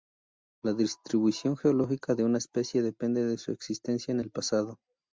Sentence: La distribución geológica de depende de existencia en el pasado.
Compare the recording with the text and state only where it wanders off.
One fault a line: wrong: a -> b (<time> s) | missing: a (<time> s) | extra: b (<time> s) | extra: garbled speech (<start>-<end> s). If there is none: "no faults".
extra: una especie (2.2 s)
extra: su (3.4 s)